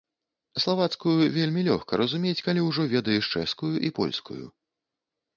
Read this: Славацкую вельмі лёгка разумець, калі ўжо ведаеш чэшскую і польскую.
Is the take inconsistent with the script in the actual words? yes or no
no